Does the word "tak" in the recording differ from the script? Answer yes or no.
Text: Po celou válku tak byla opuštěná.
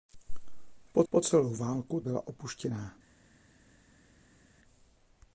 yes